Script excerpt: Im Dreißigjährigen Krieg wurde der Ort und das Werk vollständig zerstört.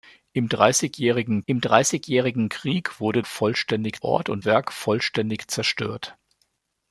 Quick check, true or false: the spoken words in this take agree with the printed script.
false